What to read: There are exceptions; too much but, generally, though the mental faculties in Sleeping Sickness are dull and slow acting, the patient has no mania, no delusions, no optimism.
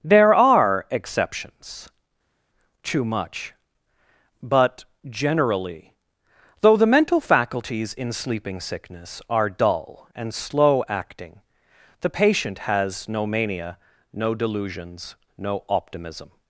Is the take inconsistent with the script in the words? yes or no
no